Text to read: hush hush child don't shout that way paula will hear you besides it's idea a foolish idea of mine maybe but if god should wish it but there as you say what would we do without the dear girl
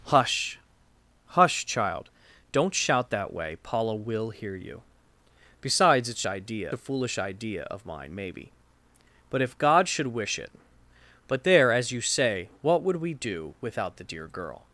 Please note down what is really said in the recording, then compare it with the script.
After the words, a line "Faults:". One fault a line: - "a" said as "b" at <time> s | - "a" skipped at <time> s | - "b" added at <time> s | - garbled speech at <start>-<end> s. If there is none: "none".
hush hush child don't shout that way paula will hear you besides it's idea a foolish idea of mine maybe but if god should wish it but there as you say what would we do without the dear girl
Faults:
none